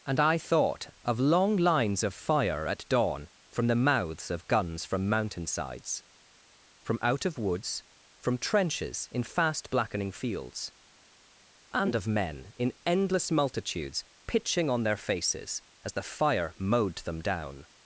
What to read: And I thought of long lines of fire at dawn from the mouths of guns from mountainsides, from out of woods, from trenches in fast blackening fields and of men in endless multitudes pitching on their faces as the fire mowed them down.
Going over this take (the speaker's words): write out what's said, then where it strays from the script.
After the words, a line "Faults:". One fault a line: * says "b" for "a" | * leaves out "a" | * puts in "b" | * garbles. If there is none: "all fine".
And I thought of long lines of fire at dawn from the mouths of guns from mountainsides, from out of woods, from trenches in fast blackening fields and of men in endless multitudes pitching on their faces as the fire mowed them down.
Faults:
all fine